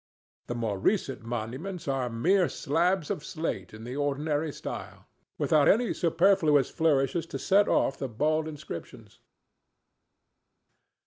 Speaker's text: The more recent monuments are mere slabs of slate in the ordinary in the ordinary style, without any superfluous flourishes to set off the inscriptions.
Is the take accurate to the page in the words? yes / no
no